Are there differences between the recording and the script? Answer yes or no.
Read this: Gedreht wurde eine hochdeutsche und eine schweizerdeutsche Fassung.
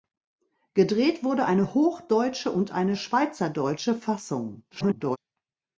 yes